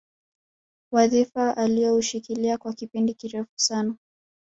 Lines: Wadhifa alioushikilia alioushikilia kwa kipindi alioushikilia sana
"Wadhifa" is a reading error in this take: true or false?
false